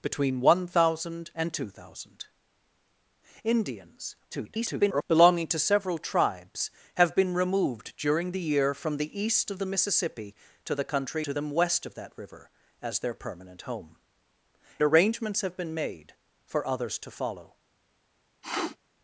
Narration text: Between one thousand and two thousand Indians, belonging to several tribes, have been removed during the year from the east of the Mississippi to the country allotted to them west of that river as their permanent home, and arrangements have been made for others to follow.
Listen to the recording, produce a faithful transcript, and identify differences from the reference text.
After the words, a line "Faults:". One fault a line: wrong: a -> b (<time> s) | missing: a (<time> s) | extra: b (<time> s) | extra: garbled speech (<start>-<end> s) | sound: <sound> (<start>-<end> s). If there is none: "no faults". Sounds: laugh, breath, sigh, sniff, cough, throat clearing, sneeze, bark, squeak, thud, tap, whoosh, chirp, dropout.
Between one thousand and two thousand Indians, [garbled] belonging to several tribes, have been removed during the year from the east of the Mississippi to the country to them west of that river as their permanent home, arrangements have been made for others to follow.
Faults:
extra: garbled speech (4.3-5.0 s)
missing: allotted (11.3 s)
missing: and (14.0 s)
sound: sniff (18.4-18.8 s)